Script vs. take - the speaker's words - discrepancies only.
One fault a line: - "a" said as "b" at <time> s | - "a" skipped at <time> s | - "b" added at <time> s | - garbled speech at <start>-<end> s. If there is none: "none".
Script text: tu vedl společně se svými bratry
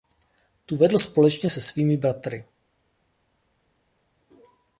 none